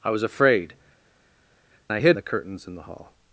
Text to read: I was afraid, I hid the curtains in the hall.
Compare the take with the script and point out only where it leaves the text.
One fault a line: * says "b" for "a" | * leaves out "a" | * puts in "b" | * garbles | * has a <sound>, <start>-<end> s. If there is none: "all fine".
all fine